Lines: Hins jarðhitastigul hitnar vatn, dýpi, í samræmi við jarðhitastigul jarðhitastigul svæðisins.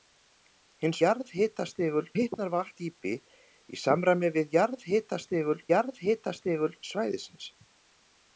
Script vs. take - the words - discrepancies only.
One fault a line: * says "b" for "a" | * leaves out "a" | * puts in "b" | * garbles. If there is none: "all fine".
all fine